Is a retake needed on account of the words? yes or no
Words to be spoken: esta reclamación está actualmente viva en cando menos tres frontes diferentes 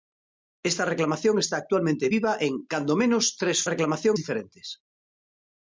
yes